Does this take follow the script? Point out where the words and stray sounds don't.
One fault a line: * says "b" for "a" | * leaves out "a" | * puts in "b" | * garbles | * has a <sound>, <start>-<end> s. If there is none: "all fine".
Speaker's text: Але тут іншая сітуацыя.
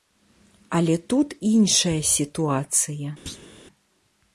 * has a thud, 3.3-3.5 s